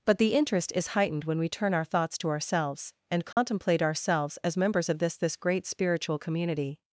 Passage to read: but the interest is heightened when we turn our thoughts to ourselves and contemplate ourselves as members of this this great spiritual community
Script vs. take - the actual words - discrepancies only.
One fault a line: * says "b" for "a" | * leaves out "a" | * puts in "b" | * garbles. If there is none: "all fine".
all fine